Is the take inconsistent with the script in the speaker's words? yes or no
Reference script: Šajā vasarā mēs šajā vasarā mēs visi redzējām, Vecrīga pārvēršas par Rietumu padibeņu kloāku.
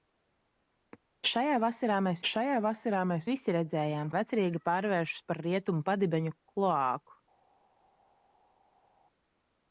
no